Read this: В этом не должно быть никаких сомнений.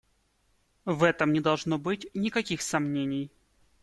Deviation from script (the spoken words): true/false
false